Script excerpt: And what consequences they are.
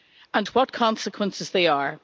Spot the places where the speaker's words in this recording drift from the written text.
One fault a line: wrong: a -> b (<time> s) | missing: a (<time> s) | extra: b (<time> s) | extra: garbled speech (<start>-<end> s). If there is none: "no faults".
no faults